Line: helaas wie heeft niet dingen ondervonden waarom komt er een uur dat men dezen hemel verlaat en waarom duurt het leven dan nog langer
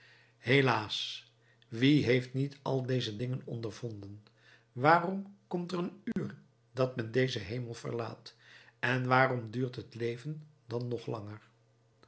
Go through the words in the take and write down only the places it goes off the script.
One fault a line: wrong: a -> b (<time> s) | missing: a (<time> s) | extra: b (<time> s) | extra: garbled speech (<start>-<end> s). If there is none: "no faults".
extra: al deze (2.6 s)